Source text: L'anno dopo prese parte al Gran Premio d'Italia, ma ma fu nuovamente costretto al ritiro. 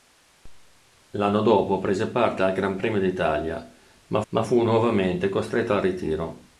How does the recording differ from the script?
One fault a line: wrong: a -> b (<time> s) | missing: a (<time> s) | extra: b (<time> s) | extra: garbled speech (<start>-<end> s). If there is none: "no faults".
no faults